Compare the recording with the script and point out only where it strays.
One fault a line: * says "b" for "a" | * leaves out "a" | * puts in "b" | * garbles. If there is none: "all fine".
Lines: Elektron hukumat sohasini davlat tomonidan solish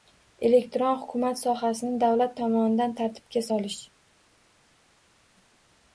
* puts in "tartibga"